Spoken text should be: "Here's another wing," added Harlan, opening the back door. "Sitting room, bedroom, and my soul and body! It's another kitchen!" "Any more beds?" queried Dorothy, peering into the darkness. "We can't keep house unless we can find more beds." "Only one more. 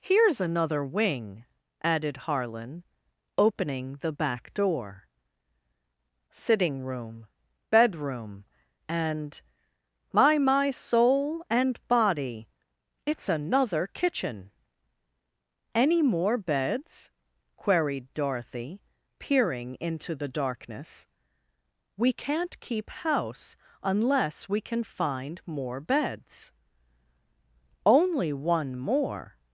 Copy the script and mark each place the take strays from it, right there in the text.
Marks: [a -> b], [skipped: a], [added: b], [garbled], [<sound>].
"Here's another wing," added Harlan, opening the back door. "Sitting room, bedroom, and my [added: my] soul and body! It's another kitchen!" "Any more beds?" queried Dorothy, peering into the darkness. "We can't keep house unless we can find more beds." "Only one more.